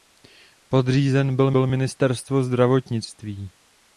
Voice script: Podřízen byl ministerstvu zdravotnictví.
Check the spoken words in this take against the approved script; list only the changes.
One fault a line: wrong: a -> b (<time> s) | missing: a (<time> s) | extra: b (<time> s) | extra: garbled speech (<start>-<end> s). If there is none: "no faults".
extra: byl (1.5 s)